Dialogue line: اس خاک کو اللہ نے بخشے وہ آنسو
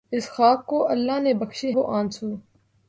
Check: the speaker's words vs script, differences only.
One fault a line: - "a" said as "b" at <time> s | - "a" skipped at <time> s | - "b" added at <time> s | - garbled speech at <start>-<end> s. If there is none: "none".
none